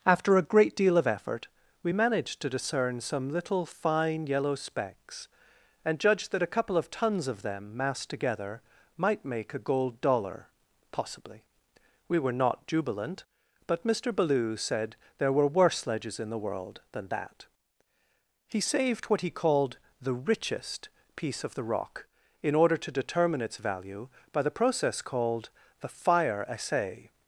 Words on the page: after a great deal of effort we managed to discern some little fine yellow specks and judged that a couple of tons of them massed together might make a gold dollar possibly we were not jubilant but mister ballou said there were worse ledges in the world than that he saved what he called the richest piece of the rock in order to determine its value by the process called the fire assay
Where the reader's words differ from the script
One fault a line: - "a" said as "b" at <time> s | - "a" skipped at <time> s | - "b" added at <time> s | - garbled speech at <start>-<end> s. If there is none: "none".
none